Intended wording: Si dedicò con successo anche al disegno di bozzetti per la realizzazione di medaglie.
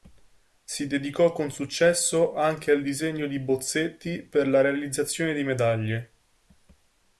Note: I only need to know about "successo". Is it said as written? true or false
true